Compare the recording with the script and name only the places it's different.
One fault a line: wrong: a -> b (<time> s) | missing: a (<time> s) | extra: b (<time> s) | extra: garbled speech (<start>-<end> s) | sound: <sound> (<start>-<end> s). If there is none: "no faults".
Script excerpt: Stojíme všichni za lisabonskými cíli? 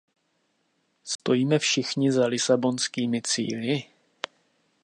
sound: dropout (1.2-1.2 s)